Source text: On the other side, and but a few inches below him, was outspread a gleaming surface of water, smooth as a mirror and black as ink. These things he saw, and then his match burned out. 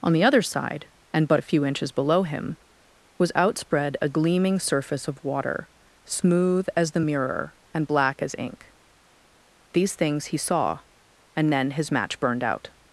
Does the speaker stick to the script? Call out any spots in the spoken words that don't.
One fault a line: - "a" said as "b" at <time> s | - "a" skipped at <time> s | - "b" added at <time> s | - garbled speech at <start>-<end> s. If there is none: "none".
- "a" said as "the" at 6.9 s